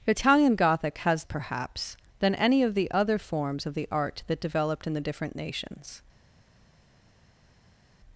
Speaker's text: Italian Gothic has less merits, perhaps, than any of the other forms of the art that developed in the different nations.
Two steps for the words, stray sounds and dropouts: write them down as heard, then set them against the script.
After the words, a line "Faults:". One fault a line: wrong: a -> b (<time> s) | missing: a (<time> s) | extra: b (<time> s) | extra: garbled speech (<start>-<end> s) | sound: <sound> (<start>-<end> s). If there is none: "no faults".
Italian Gothic has perhaps, than any of the other forms of the art that developed in the different nations.
Faults:
missing: less merits (1.3 s)